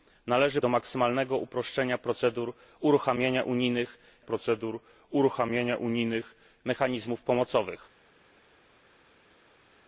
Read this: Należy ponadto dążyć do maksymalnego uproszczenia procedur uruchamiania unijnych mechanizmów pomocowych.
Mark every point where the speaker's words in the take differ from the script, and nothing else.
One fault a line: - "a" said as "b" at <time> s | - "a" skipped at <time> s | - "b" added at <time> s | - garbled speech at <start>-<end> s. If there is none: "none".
- "ponadto dążyć" skipped at 0.6 s
- "procedur uruchamiania unijnych" added at 4.2 s